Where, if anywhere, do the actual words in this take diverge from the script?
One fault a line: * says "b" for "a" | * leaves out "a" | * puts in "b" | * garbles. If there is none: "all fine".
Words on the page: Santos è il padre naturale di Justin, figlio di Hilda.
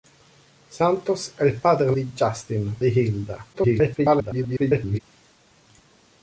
* leaves out "naturale"
* leaves out "figlio"
* garbles